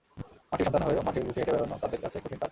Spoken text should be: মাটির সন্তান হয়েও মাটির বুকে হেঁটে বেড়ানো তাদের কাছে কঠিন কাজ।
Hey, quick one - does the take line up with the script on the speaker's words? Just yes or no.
yes